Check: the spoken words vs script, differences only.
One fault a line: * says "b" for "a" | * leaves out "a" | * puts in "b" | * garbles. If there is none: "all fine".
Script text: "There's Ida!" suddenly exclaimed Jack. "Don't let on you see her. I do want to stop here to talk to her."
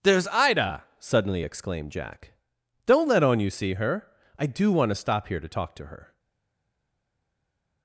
all fine